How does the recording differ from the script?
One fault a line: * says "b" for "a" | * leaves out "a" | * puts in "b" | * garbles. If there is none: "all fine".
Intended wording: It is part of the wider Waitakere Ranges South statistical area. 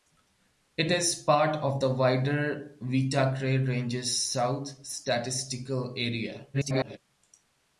* garbles